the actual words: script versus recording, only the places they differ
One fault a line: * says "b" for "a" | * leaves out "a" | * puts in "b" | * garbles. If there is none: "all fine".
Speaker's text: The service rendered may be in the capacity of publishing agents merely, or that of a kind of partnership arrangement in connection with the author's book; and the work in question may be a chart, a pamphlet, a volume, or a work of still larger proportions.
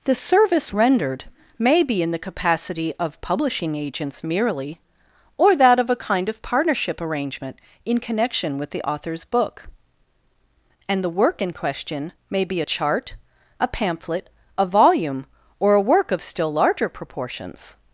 all fine